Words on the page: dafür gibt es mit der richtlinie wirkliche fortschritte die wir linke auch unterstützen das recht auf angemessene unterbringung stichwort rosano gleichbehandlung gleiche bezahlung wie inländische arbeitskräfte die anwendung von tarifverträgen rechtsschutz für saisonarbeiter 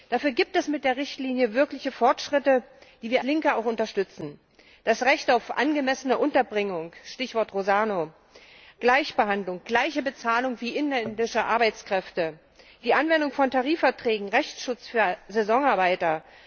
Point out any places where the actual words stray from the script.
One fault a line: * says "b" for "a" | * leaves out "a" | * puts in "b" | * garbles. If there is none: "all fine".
all fine